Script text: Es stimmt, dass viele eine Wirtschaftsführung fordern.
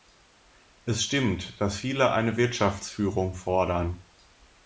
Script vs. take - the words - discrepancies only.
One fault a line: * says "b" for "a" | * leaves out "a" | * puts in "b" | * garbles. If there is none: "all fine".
all fine